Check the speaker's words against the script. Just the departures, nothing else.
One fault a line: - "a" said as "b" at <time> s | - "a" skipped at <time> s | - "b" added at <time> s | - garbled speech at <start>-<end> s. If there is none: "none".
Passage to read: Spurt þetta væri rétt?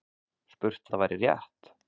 none